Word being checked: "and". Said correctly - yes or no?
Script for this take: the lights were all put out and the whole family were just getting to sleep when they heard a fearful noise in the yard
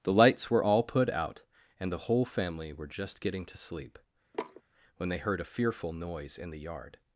yes